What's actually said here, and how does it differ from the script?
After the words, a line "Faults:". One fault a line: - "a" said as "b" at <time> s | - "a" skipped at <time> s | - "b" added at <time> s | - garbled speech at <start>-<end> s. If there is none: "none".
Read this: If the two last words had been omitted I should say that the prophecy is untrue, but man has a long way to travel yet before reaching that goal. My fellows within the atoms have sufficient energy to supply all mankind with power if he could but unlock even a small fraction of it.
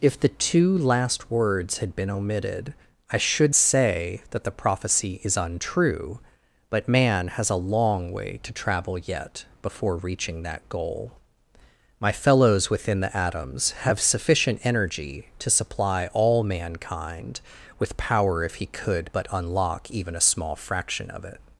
If the two last words had been omitted I should say that the prophecy is untrue, but man has a long way to travel yet before reaching that goal. My fellows within the atoms have sufficient energy to supply all mankind with power if he could but unlock even a small fraction of it.
Faults:
none